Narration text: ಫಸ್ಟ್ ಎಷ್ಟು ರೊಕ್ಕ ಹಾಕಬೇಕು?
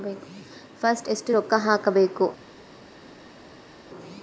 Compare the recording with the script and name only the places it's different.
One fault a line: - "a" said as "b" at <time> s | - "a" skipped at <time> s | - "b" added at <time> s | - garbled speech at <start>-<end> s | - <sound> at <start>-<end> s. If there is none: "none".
none